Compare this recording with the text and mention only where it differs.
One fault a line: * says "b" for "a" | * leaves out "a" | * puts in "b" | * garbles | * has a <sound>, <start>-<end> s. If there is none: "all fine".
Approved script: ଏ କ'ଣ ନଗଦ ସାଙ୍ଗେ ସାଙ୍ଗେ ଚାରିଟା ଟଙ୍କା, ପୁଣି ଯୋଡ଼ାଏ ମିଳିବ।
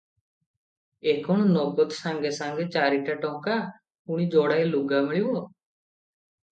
* puts in "ଲୁଗା"